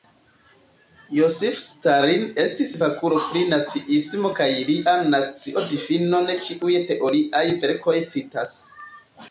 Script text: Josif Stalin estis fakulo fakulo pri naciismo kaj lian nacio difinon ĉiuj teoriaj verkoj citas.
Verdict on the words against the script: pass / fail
fail